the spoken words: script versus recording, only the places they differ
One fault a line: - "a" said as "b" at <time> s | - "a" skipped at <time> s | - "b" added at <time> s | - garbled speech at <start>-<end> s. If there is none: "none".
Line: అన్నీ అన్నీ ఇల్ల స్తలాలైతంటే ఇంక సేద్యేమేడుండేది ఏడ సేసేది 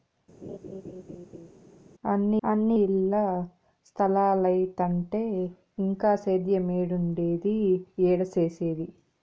none